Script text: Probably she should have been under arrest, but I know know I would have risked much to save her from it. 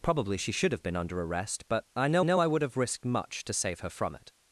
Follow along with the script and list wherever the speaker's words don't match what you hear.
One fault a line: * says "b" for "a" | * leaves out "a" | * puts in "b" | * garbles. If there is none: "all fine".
all fine